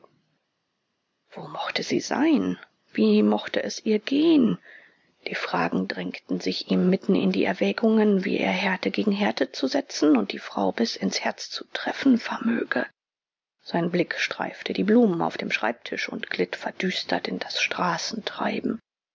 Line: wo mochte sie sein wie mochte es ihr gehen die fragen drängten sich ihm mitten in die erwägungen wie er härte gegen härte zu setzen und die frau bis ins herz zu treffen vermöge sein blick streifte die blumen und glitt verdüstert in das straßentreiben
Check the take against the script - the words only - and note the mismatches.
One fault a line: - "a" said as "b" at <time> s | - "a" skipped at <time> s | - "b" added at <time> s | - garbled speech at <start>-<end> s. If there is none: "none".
- "auf dem schreibtisch" added at 15.2 s